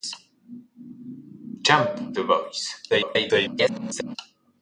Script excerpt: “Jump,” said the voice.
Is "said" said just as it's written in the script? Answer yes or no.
no